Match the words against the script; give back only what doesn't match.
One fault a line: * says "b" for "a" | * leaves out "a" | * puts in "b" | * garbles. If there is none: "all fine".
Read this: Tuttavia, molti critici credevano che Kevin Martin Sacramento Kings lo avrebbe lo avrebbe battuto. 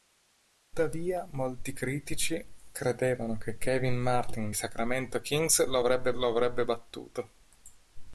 all fine